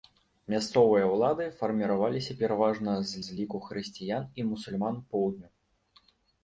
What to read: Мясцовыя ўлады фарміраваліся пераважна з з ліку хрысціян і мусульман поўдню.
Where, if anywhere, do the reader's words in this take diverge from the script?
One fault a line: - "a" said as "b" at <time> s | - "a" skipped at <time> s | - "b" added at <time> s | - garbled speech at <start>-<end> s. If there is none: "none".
none